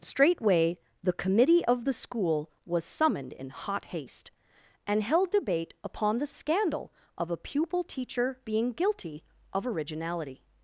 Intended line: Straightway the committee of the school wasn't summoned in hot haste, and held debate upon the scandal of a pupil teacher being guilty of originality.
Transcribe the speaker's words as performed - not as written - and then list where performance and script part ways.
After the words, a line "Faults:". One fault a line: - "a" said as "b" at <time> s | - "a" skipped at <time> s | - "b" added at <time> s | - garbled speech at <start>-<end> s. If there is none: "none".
Straightway the committee of the school was summoned in hot haste, and held debate upon the scandal of a pupil teacher being guilty of originality.
Faults:
- "wasn't" said as "was" at 2.7 s